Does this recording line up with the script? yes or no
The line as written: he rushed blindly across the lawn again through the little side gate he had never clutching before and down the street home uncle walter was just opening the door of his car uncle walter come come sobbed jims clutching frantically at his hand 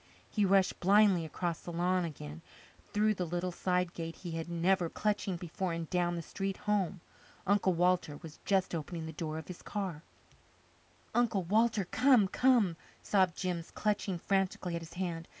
yes